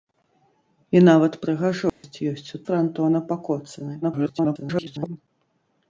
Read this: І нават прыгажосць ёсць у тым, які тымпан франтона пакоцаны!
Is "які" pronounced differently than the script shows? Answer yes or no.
yes